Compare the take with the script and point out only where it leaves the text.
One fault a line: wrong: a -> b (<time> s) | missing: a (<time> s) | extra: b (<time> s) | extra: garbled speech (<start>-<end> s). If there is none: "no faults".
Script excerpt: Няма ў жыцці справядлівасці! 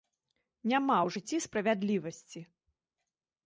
no faults